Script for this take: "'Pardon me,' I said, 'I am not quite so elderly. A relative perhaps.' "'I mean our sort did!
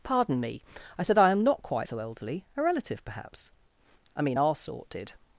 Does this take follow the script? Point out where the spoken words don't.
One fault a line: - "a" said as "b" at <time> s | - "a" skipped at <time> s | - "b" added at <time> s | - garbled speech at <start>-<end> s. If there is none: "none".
none